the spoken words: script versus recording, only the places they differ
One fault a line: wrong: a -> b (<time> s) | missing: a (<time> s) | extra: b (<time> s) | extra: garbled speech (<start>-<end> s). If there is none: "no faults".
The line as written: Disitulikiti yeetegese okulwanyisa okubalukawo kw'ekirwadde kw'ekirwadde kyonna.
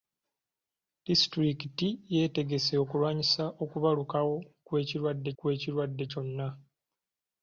no faults